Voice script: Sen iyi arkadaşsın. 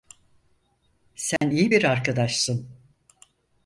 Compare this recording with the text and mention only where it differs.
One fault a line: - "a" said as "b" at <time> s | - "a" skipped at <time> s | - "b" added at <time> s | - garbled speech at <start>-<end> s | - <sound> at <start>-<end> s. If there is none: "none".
- dropout at 1.4-1.4 s
- "bir" added at 1.7 s